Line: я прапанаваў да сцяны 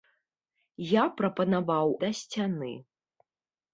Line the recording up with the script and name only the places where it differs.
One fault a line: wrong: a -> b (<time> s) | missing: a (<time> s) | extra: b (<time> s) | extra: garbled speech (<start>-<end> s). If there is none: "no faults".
no faults